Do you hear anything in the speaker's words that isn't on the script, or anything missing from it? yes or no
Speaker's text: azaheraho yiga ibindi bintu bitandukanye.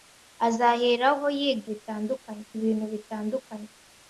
yes